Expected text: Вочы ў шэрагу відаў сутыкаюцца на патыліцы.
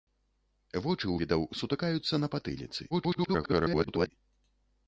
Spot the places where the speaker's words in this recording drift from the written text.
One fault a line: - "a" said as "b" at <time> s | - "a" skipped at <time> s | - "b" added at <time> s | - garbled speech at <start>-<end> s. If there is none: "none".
- "шэрагу" skipped at 1.2 s
- garbled speech at 2.9-4.1 s